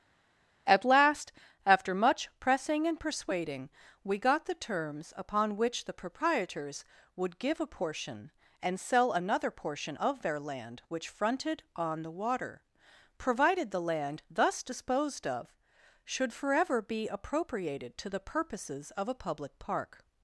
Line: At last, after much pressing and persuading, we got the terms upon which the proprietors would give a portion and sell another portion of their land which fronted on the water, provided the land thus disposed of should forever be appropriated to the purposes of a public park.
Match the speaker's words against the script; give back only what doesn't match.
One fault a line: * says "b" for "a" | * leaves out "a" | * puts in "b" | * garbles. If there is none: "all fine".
all fine